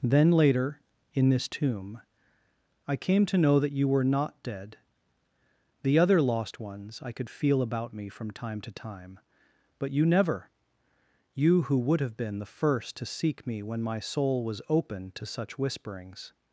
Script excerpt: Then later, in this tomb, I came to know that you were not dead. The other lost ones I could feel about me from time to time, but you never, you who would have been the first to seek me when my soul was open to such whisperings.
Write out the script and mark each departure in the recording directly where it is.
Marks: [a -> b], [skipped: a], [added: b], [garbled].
Then later, in this tomb, I came to know that you were not dead. The other lost ones I could feel about me from time to time, but you never, you who would have been the first to seek me when my soul was open to such whisperings.